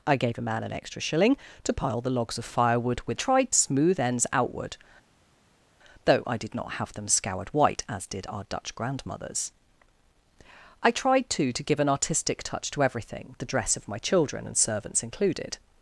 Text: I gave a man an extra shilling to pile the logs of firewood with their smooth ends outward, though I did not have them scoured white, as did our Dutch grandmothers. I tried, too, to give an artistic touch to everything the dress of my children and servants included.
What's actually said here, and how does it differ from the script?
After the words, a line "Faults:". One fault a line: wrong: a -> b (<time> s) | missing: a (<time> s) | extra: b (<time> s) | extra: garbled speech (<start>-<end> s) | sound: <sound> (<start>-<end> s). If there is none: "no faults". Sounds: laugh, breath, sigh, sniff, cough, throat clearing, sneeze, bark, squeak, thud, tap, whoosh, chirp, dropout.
I gave a man an extra shilling to pile the logs of firewood with tried smooth ends outward, though I did not have them scoured white, as did our Dutch grandmothers. I tried, too, to give an artistic touch to everything the dress of my children and servants included.
Faults:
wrong: their -> tried (3.1 s)